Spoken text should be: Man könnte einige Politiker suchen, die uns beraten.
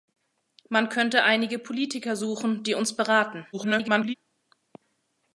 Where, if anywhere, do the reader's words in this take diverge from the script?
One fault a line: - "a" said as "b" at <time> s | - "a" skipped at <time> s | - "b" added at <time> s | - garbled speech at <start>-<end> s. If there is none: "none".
- garbled speech at 3.5-4.1 s